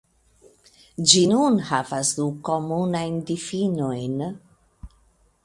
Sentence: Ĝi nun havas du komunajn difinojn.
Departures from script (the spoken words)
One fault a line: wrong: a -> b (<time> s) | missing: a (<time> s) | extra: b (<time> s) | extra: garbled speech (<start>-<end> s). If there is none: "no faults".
no faults